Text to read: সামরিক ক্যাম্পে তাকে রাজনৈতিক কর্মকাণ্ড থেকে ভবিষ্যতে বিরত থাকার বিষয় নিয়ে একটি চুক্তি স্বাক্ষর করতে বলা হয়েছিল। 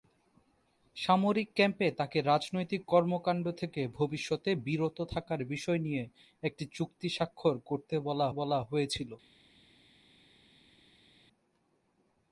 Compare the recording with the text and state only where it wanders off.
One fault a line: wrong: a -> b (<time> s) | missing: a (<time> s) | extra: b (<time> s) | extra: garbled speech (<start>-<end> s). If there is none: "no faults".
extra: বলা (8.3 s)